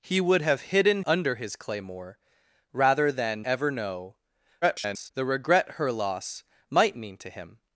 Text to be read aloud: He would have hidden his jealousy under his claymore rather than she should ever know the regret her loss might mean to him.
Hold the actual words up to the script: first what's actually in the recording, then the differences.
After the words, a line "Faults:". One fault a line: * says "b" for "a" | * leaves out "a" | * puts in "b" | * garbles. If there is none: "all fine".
He would have hidden under his claymore rather than ever know [garbled] the regret her loss might mean to him.
Faults:
* leaves out "his jealousy"
* leaves out "she should"
* garbles